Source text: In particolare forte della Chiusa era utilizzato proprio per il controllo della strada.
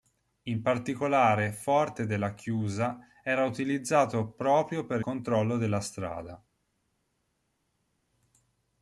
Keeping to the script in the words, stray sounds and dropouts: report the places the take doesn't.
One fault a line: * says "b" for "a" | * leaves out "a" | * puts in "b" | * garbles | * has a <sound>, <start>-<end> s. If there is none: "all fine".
* leaves out "il"